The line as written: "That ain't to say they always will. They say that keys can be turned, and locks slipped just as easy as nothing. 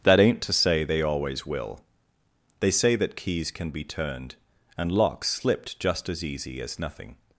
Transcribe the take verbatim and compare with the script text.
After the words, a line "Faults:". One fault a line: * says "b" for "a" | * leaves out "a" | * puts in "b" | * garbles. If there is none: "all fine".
"That ain't to say they always will. They say that keys can be turned, and locks slipped just as easy as nothing.
Faults:
all fine